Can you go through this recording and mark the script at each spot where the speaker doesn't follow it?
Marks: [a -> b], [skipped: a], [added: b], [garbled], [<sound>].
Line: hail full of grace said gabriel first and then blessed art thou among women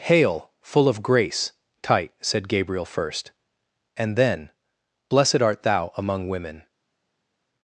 hail full of grace [added: tight] said gabriel first and then blessed art thou among women